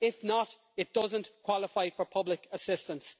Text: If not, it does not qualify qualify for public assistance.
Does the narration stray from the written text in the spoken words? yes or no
yes